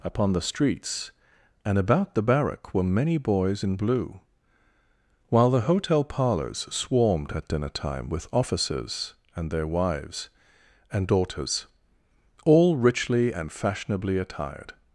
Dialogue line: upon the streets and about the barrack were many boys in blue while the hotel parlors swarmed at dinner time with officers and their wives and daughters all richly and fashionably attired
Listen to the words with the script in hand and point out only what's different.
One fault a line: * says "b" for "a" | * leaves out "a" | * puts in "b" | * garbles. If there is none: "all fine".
all fine